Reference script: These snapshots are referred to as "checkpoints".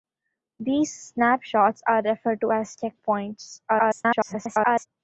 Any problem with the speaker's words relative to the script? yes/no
yes